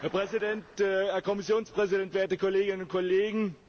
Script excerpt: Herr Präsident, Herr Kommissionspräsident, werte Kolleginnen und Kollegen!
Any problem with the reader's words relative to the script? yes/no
no